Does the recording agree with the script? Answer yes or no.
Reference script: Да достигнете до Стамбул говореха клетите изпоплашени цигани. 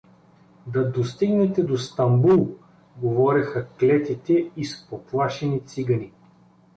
yes